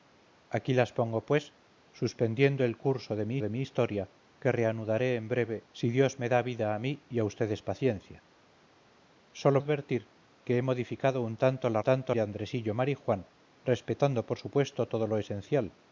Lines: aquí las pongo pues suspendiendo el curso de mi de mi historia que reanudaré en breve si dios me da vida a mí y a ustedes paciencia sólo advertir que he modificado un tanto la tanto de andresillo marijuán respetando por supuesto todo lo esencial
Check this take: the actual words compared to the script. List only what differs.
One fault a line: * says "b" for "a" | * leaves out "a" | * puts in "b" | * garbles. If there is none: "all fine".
all fine